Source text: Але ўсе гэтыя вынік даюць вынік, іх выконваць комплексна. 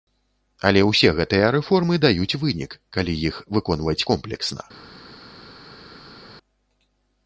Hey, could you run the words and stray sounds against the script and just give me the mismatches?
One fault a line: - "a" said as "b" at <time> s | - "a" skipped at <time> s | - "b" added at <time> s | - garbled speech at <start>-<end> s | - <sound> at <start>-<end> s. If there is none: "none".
- "вынік" said as "рэформы" at 1.6 s
- "калі" added at 3.0 s